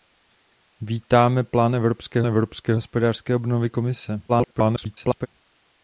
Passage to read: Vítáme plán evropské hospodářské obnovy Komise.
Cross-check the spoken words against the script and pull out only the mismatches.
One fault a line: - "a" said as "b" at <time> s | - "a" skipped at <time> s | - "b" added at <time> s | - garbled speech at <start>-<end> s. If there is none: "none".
- "evropské" added at 2.3 s
- garbled speech at 4.3-5.3 s